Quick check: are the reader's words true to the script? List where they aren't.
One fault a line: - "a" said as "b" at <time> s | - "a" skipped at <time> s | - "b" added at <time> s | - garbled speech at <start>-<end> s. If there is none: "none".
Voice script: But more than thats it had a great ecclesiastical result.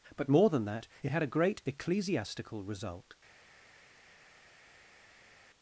- "thats" said as "that" at 0.7 s